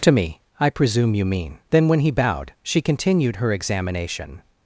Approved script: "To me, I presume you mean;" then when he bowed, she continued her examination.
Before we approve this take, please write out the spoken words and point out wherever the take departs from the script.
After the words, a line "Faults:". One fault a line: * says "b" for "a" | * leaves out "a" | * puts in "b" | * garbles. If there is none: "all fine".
"To me, I presume you mean;" then when he bowed, she continued her examination.
Faults:
all fine